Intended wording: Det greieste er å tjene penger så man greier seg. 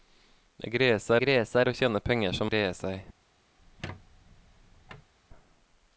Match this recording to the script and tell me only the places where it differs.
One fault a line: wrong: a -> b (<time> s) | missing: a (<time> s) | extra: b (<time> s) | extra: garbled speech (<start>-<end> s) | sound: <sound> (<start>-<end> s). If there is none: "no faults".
extra: greieste (1.2 s)
missing: man (2.5 s)
sound: squeak (3.6-5.1 s)